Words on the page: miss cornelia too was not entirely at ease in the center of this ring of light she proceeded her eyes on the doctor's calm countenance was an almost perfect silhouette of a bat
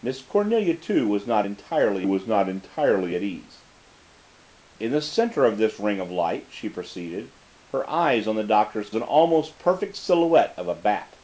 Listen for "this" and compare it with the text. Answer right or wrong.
right